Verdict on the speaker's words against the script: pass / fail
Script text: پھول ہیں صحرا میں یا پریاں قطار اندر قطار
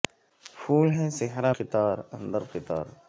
fail